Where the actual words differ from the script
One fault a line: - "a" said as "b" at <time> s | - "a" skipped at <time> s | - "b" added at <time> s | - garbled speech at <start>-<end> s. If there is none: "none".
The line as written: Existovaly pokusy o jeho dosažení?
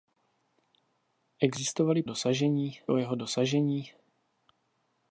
- "pokusy" said as "dosažení" at 2.0 s